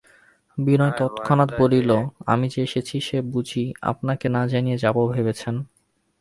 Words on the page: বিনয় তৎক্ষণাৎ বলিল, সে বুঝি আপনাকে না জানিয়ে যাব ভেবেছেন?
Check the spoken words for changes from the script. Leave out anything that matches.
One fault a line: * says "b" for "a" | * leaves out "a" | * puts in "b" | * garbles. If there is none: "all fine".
* puts in "আমি যে এসেছি"